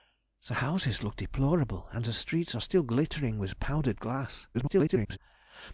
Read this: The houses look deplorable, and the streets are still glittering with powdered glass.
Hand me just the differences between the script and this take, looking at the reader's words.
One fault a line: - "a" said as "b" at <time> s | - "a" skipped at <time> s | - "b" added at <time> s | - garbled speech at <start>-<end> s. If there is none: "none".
- garbled speech at 4.5-5.2 s